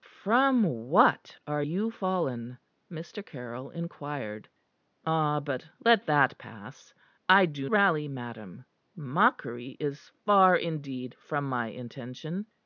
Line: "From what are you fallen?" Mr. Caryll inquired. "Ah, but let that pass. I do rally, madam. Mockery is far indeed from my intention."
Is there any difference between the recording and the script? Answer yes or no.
no